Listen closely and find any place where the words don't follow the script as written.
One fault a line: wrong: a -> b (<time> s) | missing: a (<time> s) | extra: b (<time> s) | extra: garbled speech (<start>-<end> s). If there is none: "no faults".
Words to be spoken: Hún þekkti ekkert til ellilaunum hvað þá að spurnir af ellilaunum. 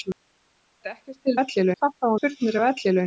no faults